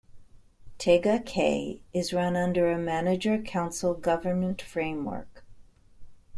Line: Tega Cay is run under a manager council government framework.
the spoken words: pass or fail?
pass